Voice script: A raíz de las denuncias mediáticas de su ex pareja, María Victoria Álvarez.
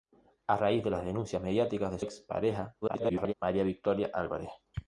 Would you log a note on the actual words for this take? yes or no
yes